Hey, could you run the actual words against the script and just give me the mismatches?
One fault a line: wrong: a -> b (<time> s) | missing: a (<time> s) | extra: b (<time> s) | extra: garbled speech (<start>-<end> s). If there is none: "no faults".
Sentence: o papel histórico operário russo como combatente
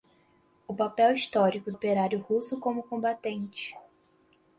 no faults